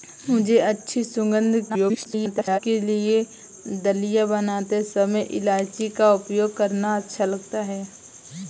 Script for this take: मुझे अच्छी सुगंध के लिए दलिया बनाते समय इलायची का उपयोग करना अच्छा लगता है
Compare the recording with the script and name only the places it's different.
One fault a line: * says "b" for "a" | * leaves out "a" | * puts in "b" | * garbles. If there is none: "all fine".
* garbles